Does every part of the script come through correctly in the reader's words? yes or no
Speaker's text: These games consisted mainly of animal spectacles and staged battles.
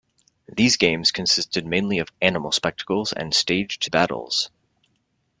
yes